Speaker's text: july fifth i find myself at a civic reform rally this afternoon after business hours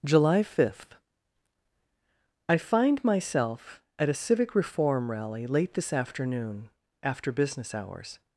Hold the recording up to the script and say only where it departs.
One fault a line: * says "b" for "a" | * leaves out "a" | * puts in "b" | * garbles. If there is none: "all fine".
* puts in "late"